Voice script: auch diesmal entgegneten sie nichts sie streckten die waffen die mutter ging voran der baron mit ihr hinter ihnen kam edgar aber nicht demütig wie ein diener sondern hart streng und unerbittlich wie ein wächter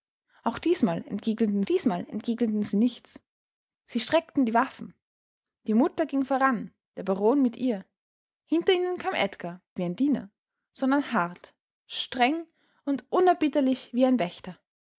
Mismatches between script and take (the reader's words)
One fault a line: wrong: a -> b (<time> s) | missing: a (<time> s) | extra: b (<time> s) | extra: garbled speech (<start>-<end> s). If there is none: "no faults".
extra: diesmal entgegneten (1.6 s)
missing: aber nicht demütig (9.6 s)